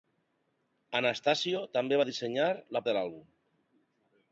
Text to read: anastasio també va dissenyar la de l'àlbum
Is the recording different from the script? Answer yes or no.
no